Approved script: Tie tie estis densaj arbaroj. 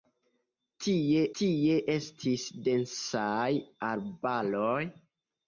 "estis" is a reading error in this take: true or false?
false